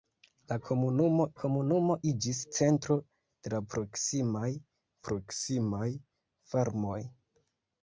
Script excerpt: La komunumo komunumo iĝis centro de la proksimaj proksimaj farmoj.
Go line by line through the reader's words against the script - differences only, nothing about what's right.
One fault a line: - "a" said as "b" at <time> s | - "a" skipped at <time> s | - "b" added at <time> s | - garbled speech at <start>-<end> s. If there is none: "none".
none